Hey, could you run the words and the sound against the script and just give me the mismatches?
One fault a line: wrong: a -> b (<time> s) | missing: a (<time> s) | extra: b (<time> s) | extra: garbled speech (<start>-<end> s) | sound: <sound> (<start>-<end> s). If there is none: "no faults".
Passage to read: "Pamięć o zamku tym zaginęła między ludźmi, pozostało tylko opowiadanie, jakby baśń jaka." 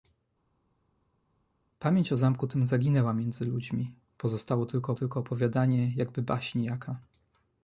extra: tylko (4.9 s)